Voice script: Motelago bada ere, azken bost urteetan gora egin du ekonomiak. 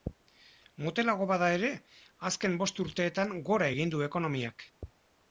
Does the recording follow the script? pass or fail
pass